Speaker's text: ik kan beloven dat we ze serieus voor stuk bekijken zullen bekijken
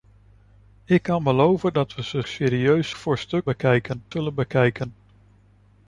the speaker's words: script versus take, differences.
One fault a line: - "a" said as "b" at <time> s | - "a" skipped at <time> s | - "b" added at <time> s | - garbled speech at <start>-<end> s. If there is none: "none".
none